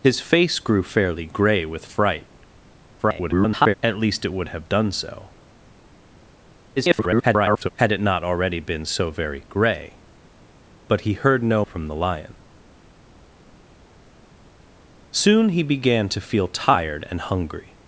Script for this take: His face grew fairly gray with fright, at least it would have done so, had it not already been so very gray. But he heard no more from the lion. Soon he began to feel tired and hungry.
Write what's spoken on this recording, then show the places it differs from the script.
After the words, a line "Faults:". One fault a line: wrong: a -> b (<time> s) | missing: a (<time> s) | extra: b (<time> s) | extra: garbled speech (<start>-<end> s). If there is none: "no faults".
His face grew fairly gray with fright, [garbled] at least it would have done so, [garbled] had it not already been so very gray. But he heard no from the lion. Soon he began to feel tired and hungry.
Faults:
extra: garbled speech (3.0-3.7 s)
extra: garbled speech (6.8-7.7 s)
missing: more (11.7 s)